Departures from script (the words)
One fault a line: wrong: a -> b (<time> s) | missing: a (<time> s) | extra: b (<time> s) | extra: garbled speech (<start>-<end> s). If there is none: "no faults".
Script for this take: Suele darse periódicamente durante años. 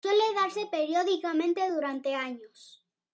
no faults